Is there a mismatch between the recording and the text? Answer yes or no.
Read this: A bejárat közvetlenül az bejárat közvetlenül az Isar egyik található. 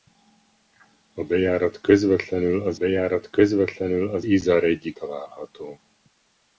no